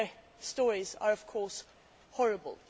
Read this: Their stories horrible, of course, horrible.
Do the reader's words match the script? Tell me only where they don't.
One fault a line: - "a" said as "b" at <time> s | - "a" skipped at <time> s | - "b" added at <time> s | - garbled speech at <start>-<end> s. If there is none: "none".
- "horrible" said as "are" at 0.9 s